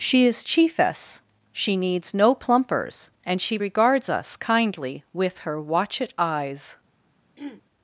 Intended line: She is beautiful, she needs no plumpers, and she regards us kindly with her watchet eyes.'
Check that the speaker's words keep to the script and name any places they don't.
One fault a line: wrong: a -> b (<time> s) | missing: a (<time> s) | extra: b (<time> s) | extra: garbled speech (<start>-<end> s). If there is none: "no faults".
wrong: beautiful -> chiefess (0.4 s)